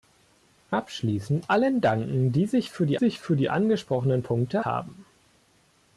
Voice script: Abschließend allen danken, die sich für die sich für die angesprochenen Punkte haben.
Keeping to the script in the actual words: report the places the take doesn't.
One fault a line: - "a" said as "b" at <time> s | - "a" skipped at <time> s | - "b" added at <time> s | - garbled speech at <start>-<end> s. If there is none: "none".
none